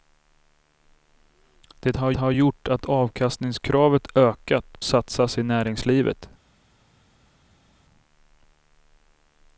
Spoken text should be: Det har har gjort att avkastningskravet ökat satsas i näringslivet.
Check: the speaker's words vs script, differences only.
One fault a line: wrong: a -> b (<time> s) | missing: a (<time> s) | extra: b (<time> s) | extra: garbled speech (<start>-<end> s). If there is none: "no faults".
no faults